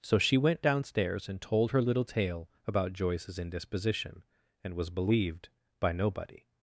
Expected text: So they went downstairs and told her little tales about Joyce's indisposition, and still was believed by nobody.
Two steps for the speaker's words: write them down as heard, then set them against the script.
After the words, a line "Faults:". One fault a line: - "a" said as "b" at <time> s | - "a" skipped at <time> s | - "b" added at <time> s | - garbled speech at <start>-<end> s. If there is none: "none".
So she went downstairs and told her little tale about Joyce's indisposition, and was believed by nobody.
Faults:
- "they" said as "she" at 0.2 s
- "tales" said as "tale" at 2.0 s
- "still" skipped at 4.8 s